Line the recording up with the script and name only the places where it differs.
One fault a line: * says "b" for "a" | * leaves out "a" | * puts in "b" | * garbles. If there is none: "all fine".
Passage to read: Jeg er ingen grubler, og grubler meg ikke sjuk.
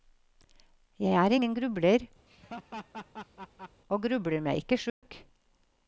all fine